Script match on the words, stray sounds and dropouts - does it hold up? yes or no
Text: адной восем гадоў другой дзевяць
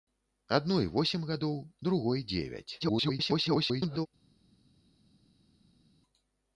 no